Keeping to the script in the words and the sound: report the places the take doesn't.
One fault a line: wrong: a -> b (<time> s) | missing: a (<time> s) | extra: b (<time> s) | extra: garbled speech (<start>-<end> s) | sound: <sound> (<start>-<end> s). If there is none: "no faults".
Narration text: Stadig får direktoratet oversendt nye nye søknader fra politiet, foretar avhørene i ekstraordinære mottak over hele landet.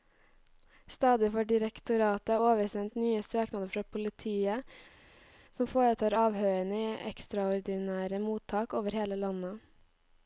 missing: nye (3.2 s)
extra: som (5.6 s)